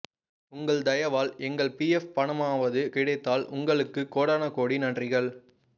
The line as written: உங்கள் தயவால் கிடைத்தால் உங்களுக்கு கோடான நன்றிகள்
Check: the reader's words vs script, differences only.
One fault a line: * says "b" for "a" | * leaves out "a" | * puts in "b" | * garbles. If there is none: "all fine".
* puts in "எங்கள் பிஎஃப் பணமாவது"
* puts in "கோடி"